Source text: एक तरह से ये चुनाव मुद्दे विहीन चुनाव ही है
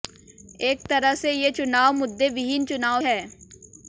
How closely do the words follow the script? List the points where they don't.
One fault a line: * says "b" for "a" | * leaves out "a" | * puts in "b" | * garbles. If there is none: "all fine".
* leaves out "ही"